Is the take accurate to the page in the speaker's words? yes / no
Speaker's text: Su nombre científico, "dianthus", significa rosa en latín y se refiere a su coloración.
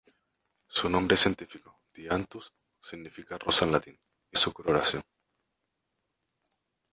no